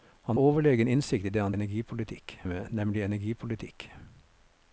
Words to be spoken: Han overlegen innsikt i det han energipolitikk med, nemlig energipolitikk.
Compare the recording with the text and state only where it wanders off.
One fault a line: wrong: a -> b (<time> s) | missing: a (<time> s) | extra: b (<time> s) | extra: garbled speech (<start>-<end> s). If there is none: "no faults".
no faults